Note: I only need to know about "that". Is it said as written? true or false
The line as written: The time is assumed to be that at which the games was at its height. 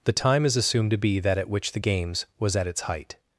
true